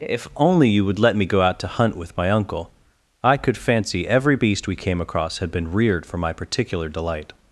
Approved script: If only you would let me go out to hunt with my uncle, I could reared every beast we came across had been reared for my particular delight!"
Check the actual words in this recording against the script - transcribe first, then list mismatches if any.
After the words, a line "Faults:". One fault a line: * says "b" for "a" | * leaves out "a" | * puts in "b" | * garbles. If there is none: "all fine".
If only you would let me go out to hunt with my uncle, I could fancy every beast we came across had been reared for my particular delight!"
Faults:
* says "fancy" for "reared"